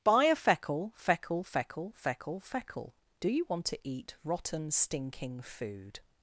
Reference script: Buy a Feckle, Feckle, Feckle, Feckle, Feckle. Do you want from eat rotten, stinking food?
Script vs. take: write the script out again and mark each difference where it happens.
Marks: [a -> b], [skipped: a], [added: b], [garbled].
Buy a Feckle, Feckle, Feckle, Feckle, Feckle. Do you want [from -> to] eat rotten, stinking food?